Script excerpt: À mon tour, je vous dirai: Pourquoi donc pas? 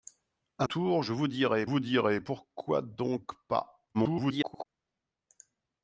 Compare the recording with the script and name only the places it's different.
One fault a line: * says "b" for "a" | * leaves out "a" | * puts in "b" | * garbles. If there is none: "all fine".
* leaves out "mon"
* puts in "vous dirai"
* garbles